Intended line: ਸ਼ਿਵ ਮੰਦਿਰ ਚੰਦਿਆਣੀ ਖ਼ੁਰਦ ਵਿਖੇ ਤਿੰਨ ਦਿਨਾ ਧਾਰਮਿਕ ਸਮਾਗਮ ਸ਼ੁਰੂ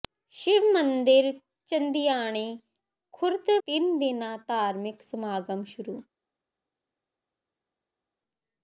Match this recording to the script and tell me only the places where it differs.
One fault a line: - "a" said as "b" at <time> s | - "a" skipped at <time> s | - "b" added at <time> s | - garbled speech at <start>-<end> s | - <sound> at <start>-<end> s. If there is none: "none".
- "ਵਿਖੇ" skipped at 3.5 s